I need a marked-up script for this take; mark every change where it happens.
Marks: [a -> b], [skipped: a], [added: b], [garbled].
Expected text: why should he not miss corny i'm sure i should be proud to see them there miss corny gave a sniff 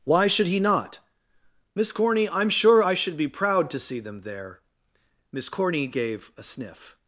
why should he not miss corny i'm sure i should be proud to see them there miss corny gave a sniff